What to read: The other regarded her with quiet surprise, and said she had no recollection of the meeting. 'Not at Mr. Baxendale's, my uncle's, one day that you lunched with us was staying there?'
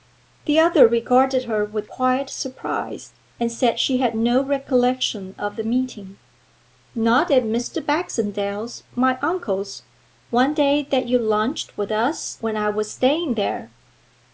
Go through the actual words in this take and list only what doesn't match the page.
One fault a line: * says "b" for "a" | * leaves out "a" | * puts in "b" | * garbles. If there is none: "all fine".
* puts in "when I"